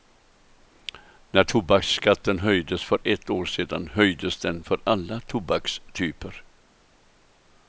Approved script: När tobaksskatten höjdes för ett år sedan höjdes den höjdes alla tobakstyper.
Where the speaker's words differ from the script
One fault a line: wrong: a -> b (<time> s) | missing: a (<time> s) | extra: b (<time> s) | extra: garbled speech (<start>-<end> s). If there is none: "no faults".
wrong: höjdes -> för (4.6 s)